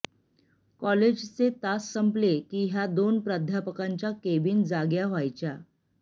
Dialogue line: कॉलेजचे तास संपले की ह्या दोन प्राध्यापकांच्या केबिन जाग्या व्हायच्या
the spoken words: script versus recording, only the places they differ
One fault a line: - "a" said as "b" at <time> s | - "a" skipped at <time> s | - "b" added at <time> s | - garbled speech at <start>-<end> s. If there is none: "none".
none